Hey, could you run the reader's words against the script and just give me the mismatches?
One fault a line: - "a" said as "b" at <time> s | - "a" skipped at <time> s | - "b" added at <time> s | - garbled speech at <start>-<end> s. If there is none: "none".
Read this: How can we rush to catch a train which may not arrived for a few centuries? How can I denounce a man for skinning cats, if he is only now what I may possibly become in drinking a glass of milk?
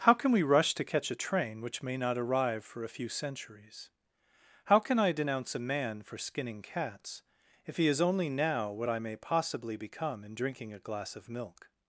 - "arrived" said as "arrive" at 2.2 s